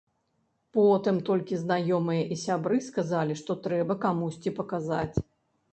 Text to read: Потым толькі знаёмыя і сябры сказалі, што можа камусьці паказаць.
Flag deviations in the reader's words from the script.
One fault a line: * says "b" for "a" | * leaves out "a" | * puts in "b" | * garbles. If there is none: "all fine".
* says "трэба" for "можа"